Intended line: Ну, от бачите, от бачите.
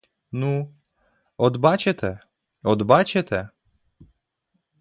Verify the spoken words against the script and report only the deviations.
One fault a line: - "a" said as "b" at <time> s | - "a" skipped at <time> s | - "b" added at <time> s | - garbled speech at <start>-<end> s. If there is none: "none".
none